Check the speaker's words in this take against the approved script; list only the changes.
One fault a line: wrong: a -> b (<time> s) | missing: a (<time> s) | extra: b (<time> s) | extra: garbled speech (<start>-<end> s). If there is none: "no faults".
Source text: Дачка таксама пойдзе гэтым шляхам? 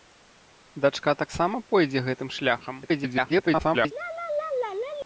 extra: garbled speech (2.8-3.9 s)